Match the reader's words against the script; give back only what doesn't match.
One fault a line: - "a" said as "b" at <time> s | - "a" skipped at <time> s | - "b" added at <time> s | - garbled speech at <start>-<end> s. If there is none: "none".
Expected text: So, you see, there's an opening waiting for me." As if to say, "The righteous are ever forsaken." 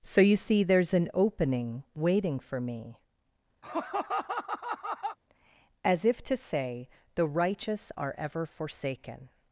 none